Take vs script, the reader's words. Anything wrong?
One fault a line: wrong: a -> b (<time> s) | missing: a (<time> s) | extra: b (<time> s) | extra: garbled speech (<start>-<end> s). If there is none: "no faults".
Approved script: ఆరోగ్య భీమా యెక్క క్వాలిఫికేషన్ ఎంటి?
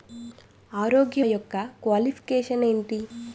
missing: భీమా (1.2 s)